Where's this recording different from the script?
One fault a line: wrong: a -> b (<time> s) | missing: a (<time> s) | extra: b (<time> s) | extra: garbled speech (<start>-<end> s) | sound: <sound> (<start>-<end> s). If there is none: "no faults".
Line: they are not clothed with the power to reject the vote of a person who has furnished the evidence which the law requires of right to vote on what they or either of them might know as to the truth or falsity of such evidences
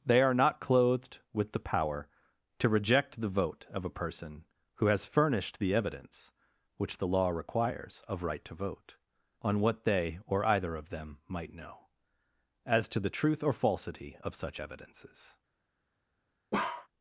sound: bark (16.5-16.9 s)